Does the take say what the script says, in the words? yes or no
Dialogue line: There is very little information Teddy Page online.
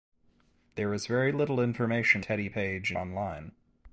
yes